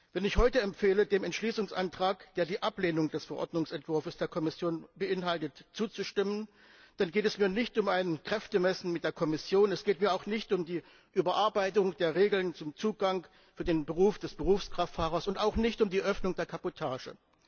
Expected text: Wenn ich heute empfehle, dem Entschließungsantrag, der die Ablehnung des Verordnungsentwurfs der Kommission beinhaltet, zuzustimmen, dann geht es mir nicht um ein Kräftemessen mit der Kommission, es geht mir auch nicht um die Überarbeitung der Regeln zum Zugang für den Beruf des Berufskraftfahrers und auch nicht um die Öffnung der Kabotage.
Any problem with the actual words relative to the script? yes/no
no